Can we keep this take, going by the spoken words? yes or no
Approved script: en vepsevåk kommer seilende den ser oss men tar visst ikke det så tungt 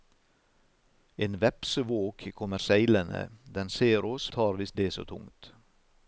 no